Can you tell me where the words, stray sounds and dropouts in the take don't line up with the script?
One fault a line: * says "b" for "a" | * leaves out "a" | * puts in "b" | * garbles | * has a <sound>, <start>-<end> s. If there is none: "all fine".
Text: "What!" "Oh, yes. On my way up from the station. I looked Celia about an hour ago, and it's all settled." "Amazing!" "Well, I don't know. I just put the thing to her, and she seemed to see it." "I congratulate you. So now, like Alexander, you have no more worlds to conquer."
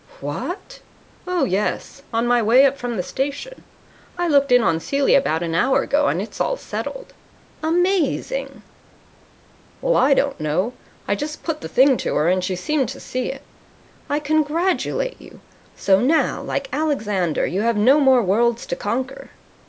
* puts in "in on"